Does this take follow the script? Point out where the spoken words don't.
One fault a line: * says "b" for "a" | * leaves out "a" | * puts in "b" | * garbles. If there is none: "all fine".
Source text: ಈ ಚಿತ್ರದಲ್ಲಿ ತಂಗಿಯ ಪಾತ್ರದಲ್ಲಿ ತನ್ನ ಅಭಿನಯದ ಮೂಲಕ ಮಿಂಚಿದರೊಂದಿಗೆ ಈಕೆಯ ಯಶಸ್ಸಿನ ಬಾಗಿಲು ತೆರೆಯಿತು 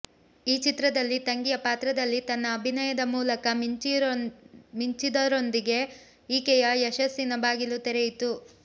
all fine